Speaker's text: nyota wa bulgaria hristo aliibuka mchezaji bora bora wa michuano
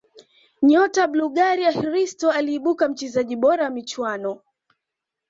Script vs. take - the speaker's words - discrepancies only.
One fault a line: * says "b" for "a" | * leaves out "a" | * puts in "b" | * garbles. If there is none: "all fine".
* leaves out "bora"